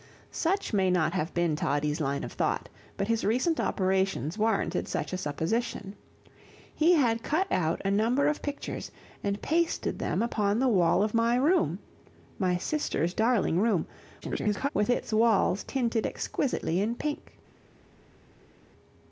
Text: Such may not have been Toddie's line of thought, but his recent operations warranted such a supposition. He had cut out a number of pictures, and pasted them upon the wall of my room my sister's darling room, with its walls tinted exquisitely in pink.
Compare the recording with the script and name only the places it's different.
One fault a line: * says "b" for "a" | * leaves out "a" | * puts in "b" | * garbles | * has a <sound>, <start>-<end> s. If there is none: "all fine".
* garbles